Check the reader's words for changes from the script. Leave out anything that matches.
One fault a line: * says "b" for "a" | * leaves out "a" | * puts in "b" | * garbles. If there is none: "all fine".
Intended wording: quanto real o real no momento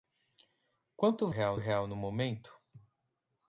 all fine